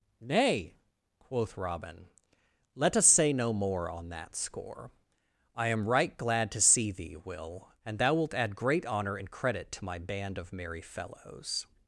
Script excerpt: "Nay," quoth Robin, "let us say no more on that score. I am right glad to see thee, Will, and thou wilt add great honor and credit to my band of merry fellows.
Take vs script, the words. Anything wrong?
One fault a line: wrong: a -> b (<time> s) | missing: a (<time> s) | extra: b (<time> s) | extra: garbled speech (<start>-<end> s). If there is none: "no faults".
no faults